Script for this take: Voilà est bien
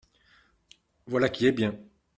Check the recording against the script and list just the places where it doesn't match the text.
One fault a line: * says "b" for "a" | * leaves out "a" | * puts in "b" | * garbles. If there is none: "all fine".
* puts in "qui"